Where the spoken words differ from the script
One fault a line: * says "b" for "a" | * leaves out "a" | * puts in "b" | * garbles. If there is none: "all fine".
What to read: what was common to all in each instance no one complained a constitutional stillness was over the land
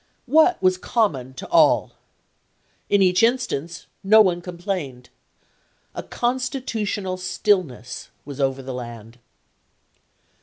all fine